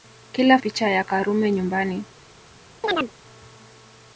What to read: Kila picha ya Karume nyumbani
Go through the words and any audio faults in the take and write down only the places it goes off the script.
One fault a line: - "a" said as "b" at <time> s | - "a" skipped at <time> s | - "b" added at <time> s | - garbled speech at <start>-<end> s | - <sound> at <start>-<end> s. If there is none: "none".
- chirp at 2.8-3.1 s